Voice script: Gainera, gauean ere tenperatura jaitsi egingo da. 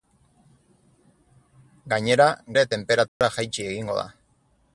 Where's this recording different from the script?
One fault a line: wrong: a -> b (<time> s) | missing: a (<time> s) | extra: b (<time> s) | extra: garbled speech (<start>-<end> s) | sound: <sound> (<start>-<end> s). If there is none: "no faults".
missing: gauean (2.3 s)
sound: dropout (3.1-3.2 s)